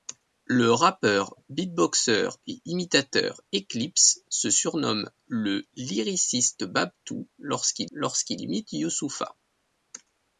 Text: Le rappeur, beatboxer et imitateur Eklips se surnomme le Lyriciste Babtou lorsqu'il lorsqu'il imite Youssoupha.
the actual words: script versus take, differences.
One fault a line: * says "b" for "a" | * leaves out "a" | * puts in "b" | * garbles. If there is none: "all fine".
all fine